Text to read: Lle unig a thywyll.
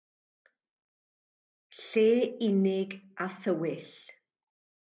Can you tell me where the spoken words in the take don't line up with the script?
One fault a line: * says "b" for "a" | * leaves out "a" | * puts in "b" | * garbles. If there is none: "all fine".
all fine